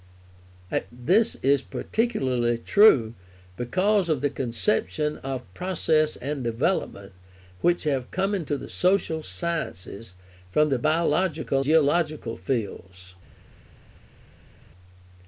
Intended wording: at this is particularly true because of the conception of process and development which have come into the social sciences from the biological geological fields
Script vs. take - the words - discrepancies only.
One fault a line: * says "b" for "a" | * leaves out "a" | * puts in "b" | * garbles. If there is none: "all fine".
all fine